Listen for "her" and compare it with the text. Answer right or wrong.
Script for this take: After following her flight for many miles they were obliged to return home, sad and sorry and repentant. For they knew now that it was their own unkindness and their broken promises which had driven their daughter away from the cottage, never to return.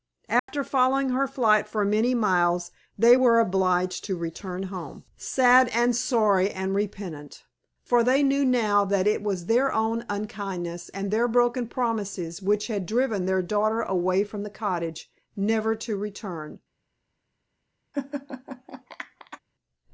right